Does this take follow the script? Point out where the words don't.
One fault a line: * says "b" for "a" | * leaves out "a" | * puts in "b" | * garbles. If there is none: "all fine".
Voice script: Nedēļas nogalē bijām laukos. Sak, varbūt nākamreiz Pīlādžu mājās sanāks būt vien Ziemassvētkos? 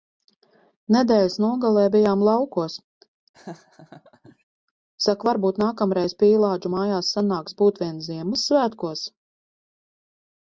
all fine